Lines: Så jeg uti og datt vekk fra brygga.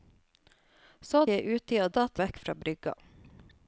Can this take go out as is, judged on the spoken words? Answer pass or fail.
pass